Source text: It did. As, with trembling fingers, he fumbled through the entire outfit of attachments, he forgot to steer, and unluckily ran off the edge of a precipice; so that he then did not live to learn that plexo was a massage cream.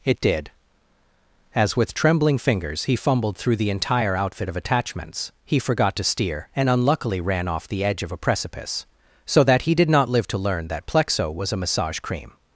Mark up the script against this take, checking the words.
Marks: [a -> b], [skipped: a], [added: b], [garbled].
It did. As, with trembling fingers, he fumbled through the entire outfit of attachments, he forgot to steer, and unluckily ran off the edge of a precipice; so that he [skipped: then] did not live to learn that plexo was a massage cream.